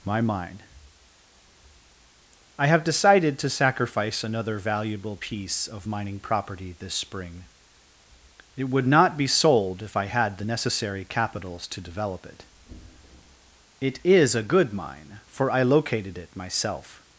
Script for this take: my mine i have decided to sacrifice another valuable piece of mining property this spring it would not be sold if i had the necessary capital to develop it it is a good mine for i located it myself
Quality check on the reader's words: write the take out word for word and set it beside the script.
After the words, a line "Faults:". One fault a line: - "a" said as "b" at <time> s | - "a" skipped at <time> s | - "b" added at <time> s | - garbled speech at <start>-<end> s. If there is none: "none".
my mine i have decided to sacrifice another valuable piece of mining property this spring it would not be sold if i had the necessary capitals to develop it it is a good mine for i located it myself
Faults:
- "capital" said as "capitals" at 11.0 s